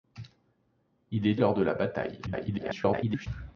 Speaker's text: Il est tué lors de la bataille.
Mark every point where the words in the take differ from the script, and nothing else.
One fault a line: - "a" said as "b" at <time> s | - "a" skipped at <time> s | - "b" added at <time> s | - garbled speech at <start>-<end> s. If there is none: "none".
- "tué" skipped at 1.4 s
- garbled speech at 2.3-3.3 s